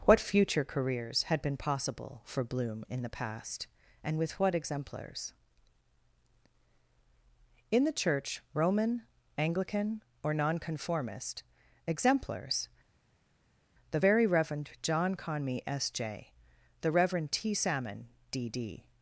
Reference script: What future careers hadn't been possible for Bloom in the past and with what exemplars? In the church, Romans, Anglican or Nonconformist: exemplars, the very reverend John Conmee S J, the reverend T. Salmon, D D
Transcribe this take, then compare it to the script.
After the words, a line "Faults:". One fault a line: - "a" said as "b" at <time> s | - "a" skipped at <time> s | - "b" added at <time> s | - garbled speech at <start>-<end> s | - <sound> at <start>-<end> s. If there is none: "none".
What future careers had been possible for Bloom in the past and with what exemplars? In the church, Roman, Anglican or Nonconformist: exemplars, the very reverend John Conmee S J, the reverend T. Salmon, D D
Faults:
- "hadn't" said as "had" at 1.2 s
- "Romans" said as "Roman" at 8.5 s